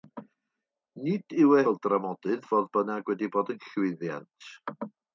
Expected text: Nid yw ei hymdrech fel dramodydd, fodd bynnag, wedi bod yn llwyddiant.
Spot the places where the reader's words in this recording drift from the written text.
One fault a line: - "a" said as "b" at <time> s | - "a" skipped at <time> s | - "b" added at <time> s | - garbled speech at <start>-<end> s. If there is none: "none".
- "hymdrech" skipped at 1.7 s